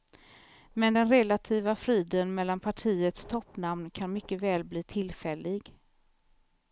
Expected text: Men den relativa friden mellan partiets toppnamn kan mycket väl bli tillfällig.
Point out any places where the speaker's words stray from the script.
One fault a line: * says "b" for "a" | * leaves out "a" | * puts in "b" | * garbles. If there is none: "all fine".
all fine